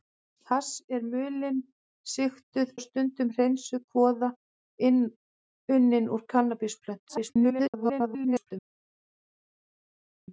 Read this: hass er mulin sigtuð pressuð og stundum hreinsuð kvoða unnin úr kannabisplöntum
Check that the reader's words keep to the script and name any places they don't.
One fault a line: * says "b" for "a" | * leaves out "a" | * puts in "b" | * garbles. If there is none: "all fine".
* leaves out "pressuð"
* garbles